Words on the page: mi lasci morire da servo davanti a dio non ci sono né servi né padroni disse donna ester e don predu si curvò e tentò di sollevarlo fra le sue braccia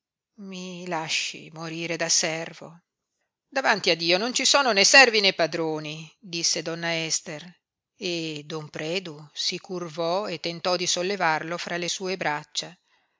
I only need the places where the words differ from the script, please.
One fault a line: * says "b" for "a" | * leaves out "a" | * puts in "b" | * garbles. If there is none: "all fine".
all fine